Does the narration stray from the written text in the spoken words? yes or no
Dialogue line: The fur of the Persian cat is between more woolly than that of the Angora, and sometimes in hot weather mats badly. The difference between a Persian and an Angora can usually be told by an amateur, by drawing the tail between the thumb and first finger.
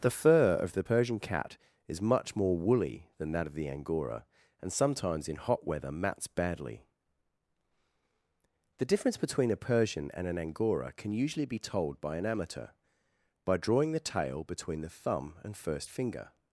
yes